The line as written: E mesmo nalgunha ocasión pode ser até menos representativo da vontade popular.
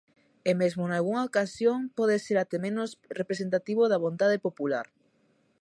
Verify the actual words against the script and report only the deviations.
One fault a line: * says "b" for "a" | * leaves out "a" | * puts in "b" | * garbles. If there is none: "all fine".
all fine